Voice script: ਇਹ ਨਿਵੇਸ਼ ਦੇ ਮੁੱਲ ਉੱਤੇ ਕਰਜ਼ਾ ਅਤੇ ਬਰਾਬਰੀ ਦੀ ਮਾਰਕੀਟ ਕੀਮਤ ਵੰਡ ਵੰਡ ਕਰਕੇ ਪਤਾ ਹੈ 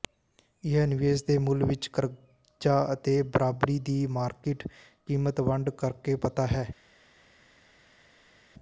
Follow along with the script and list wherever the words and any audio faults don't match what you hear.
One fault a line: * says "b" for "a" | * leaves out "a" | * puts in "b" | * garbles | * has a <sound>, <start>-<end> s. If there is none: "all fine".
* says "ਵਿੱਚ" for "ਉੱਤੇ"
* leaves out "ਵੰਡ"